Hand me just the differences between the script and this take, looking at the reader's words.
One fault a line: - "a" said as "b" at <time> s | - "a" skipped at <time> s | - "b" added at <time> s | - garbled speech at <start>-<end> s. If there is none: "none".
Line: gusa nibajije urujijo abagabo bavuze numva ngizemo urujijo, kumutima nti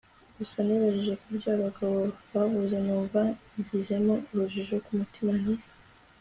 - "urujijo" said as "kubyo" at 1.2 s